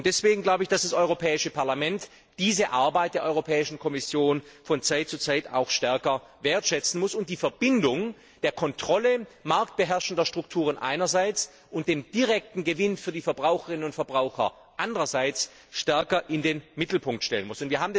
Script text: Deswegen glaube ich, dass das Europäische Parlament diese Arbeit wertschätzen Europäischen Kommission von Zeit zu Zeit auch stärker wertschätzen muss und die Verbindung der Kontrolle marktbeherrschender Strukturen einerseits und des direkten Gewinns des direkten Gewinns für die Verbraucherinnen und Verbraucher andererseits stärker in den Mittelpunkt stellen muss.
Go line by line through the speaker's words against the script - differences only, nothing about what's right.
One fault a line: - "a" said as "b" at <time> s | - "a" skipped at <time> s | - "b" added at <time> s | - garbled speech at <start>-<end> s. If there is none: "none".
- "wertschätzen" said as "der" at 3.1 s
- "des direkten Gewinns" skipped at 13.0 s